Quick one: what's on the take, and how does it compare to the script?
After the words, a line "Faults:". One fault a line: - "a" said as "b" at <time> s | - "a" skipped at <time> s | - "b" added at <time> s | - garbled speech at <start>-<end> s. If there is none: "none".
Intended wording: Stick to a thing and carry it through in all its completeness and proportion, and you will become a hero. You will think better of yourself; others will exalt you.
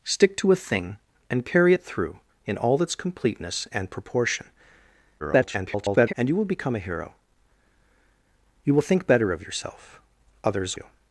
Stick to a thing and carry it through in all its completeness and proportion, [garbled] and you will become a hero. You will think better of yourself; others you.
Faults:
- garbled speech at 5.2-6.1 s
- "will exalt" skipped at 10.8 s